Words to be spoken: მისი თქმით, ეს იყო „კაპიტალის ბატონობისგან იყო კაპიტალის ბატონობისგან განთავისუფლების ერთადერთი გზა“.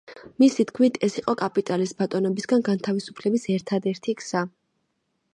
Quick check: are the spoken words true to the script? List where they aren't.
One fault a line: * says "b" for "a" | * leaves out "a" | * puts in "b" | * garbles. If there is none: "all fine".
* leaves out "იყო კაპიტალის ბატონობისგან"